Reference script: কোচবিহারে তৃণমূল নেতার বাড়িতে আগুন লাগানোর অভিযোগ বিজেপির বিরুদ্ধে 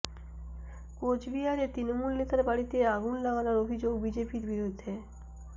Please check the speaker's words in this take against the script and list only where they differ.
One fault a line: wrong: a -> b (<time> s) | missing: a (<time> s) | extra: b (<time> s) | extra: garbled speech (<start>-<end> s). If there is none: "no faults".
no faults